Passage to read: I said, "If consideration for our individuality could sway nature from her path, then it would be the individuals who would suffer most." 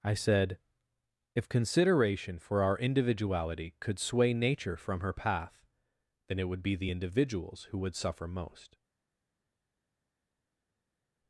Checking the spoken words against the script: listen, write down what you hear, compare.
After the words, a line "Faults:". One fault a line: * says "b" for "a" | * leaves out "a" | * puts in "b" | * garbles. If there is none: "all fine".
I said, "If consideration for our individuality could sway nature from her path, then it would be the individuals who would suffer most."
Faults:
all fine